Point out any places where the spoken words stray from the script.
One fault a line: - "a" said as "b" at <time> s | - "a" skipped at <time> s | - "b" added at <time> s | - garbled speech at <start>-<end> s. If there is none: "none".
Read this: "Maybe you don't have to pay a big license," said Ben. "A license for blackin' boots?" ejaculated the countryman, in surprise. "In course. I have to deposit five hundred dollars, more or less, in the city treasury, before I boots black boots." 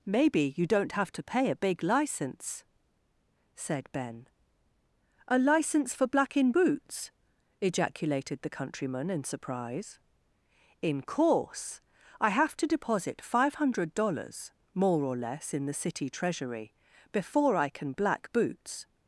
- "boots" said as "can" at 17.7 s